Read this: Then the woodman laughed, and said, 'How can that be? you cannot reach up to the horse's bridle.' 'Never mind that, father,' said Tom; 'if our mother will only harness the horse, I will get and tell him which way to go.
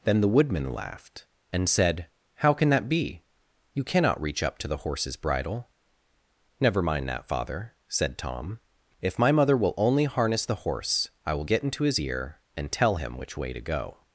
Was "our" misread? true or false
true